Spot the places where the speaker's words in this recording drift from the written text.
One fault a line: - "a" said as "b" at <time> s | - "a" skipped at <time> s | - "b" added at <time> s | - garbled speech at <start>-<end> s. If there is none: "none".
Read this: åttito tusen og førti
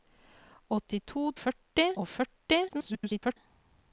- "tusen" said as "førti" at 1.4 s
- garbled speech at 2.7-3.4 s